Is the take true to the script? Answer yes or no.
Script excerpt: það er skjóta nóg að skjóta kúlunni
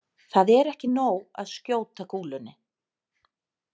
no